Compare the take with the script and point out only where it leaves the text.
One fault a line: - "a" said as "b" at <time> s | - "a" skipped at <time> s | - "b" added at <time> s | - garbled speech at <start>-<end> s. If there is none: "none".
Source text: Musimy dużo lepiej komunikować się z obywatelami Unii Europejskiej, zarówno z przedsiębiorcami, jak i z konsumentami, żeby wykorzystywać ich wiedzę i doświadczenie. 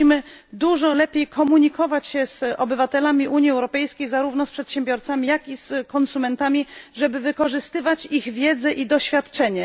none